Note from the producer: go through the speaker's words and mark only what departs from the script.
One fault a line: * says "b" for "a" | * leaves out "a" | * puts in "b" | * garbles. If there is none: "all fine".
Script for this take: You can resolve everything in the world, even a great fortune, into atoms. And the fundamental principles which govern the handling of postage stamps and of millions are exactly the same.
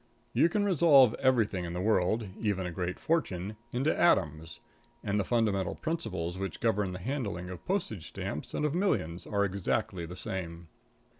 all fine